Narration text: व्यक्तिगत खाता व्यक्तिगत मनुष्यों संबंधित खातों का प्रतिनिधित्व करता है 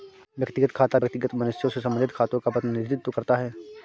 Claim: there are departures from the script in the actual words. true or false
true